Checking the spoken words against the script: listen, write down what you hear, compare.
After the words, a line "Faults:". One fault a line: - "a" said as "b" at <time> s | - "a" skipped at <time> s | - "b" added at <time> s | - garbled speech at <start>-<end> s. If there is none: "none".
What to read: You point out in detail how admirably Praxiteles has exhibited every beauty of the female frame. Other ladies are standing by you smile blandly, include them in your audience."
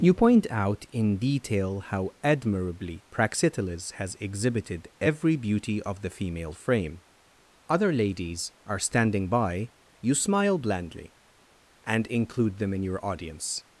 You point out in detail how admirably Praxiteles has exhibited every beauty of the female frame. Other ladies are standing by you smile blandly, and include them in your audience."
Faults:
- "and" added at 11.8 s